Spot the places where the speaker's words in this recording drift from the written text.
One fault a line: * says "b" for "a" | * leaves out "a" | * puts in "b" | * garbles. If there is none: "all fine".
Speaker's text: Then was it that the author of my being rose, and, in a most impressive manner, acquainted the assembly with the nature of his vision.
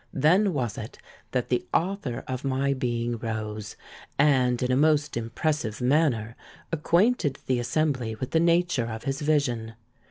all fine